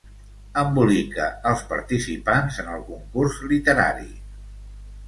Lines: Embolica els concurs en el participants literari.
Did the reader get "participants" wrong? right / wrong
wrong